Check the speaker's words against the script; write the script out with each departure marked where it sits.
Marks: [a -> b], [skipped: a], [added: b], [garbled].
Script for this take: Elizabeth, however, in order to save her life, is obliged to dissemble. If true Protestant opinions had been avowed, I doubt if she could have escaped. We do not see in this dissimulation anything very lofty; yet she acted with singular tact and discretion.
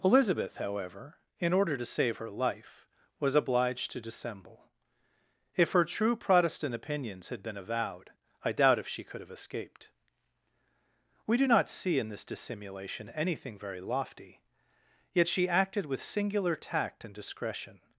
Elizabeth, however, in order to save her life, [is -> was] obliged to dissemble. If [added: her] true Protestant opinions had been avowed, I doubt if she could have escaped. We do not see in this dissimulation anything very lofty; yet she acted with singular tact and discretion.